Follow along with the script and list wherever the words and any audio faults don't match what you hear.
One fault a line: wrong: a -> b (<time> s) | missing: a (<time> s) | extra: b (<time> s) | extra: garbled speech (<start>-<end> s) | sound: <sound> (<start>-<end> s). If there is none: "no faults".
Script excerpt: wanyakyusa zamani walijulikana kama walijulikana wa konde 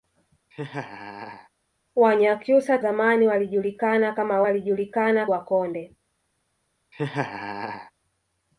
sound: laugh (0.5-1.5 s)
sound: laugh (6.9-7.9 s)